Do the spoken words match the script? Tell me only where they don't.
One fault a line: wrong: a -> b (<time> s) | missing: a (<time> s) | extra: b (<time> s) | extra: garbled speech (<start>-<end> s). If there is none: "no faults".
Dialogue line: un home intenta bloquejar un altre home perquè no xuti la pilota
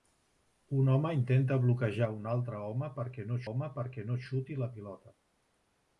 extra: home perquè no (3.5 s)